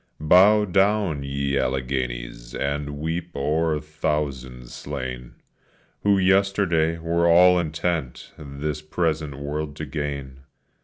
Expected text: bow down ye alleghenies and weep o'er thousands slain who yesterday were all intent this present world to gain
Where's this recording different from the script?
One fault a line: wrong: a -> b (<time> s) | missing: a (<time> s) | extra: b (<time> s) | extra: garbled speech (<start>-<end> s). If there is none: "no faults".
no faults